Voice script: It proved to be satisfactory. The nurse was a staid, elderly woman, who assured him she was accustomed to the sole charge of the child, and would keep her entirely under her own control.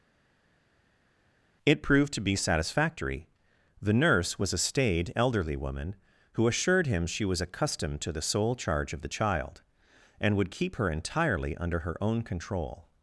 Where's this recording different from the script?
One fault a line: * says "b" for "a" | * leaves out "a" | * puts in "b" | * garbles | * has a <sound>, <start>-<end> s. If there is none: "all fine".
all fine